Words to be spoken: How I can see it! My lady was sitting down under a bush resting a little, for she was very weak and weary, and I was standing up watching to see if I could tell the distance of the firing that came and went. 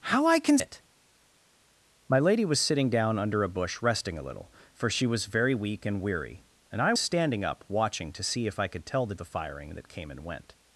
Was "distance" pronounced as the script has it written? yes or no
no